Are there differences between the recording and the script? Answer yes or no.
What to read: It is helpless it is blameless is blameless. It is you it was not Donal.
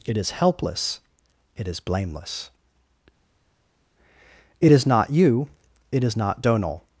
yes